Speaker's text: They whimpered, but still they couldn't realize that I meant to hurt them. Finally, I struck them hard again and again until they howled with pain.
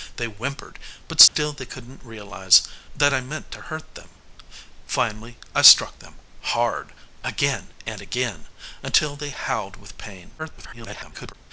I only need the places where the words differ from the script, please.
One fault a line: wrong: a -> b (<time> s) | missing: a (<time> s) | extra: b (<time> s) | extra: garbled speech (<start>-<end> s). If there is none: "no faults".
extra: garbled speech (10.4-11.3 s)